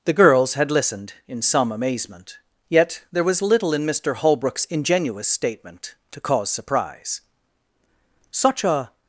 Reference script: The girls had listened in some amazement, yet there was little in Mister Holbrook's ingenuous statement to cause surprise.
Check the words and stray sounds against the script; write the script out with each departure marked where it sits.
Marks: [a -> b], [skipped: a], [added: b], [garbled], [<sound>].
The girls had listened in some amazement, yet there was little in Mister Holbrook's ingenuous statement to cause surprise. [added: Such a]